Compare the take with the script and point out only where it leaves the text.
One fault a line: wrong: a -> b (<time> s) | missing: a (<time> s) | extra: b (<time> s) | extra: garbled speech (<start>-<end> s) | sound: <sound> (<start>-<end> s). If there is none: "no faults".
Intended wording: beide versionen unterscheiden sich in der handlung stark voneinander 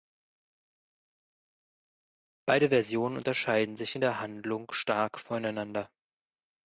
no faults